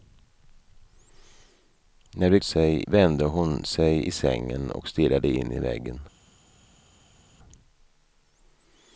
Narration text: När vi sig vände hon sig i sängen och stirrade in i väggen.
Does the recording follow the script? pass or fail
pass